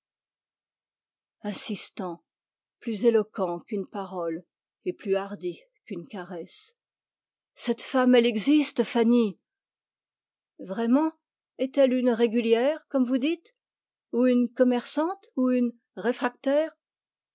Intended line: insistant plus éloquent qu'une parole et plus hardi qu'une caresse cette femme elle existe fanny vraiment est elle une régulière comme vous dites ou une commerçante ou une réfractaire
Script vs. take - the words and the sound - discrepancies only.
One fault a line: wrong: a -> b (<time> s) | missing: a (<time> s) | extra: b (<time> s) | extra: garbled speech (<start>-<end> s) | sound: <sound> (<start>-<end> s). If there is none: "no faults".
no faults